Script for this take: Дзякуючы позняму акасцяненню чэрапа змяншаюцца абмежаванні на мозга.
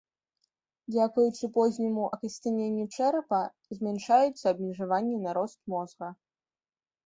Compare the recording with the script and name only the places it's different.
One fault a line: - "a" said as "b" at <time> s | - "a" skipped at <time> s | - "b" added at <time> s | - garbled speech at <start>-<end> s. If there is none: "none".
- "рост" added at 5.4 s